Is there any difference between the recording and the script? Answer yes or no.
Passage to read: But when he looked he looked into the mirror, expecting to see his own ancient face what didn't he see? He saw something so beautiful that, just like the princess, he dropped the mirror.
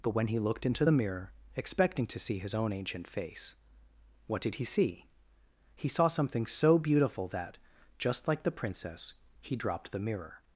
yes